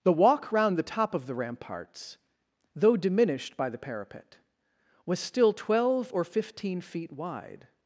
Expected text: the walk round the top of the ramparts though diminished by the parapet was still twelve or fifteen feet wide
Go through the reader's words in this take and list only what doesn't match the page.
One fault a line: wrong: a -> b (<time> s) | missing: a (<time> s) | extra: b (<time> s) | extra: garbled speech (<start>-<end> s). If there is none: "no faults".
no faults